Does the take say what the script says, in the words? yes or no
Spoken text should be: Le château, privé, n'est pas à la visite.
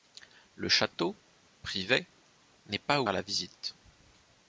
yes